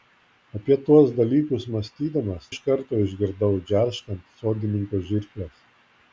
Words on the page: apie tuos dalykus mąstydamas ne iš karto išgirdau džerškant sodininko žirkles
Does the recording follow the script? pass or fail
fail